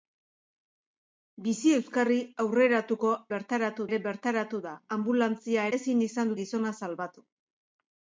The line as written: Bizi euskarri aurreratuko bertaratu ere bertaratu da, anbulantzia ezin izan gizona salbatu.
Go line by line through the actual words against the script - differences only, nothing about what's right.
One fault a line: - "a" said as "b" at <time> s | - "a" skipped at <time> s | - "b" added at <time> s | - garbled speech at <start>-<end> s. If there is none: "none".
none